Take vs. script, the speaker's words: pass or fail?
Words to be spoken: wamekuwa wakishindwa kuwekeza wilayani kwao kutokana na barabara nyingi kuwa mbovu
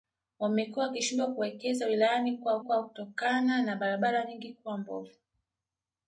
fail